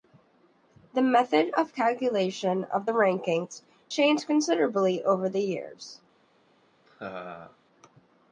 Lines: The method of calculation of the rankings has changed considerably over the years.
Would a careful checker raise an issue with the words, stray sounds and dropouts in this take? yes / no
yes